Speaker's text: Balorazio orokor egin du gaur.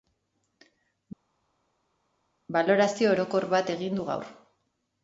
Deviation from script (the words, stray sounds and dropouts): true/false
true